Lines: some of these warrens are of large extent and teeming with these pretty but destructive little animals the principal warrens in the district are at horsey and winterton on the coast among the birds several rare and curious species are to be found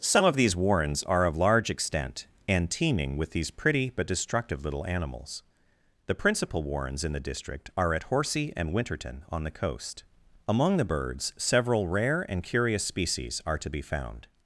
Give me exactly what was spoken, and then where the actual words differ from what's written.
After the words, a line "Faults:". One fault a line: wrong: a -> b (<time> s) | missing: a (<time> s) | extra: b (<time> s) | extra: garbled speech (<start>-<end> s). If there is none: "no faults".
some of these warrens are of large extent and teeming with these pretty but destructive little animals the principal warrens in the district are at horsey and winterton on the coast among the birds several rare and curious species are to be found
Faults:
no faults